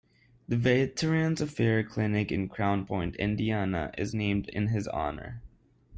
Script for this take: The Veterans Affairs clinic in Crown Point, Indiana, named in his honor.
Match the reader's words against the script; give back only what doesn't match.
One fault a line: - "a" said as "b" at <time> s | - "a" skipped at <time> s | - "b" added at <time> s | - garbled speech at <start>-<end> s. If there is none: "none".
- "is" added at 4.0 s